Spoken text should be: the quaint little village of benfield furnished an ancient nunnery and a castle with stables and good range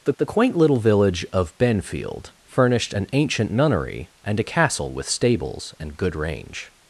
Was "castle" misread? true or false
false